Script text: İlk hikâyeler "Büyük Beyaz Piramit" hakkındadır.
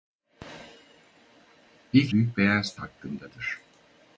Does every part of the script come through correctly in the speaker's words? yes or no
no